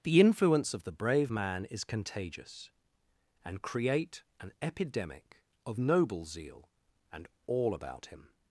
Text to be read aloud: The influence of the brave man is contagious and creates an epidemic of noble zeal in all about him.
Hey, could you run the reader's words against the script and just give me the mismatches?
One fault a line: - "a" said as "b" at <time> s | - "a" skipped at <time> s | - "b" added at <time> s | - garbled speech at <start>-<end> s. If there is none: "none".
- "creates" said as "create" at 3.6 s
- "in" said as "and" at 7.1 s